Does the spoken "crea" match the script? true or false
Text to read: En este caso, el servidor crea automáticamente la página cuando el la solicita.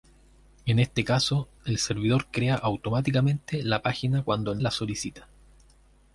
true